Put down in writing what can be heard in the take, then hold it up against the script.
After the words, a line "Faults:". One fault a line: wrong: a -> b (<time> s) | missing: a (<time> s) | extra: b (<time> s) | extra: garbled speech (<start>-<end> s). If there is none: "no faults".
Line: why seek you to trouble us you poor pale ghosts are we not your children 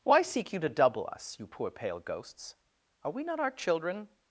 why seek you to double us you poor pale ghosts are we not our children
Faults:
wrong: trouble -> double (0.7 s)
wrong: your -> our (3.4 s)